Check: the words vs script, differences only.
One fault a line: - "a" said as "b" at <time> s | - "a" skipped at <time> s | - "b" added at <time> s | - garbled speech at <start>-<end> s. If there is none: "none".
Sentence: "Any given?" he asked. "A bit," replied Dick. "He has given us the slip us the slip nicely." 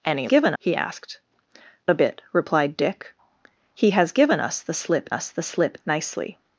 none